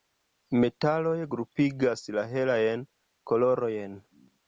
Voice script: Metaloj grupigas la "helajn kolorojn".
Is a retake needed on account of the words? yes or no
no